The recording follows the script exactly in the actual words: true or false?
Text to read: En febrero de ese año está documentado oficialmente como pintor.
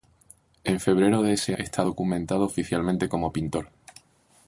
false